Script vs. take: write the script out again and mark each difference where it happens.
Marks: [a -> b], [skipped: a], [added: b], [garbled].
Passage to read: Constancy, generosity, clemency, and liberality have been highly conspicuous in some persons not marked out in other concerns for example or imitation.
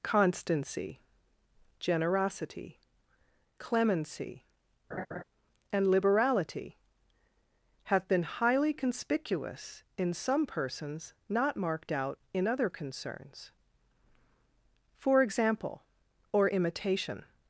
Constancy, generosity, clemency, and liberality have been highly conspicuous in some persons not marked out in other concerns for example or imitation.